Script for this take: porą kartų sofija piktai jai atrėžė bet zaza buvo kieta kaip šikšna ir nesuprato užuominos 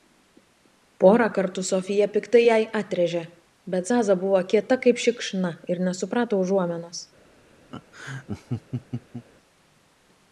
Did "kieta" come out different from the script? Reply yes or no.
no